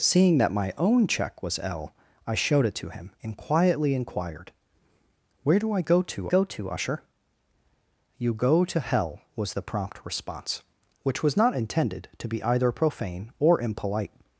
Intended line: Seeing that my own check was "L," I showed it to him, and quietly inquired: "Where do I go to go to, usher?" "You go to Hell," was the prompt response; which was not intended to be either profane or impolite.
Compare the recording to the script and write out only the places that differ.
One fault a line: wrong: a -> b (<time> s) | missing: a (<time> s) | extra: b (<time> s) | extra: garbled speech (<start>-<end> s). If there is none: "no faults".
no faults